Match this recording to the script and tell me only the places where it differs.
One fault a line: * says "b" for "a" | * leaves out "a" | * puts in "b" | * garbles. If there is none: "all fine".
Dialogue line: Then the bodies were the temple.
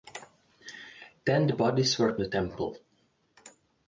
all fine